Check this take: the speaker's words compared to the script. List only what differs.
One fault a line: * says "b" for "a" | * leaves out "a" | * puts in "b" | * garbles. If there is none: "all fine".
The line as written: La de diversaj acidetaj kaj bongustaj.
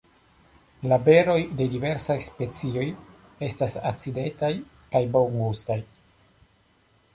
* puts in "beroj"
* puts in "specioj estas"